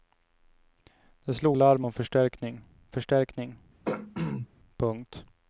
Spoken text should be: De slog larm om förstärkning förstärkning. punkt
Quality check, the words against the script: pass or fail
pass